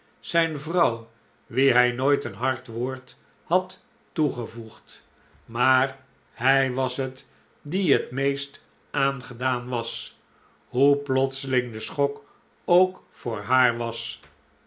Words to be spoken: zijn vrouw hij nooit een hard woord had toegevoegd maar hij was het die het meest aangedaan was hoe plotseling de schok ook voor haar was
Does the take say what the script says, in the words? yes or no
no